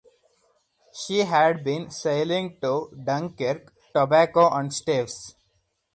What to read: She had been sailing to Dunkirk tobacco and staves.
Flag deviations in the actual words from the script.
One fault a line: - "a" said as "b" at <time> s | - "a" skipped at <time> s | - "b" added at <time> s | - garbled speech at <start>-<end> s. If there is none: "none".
none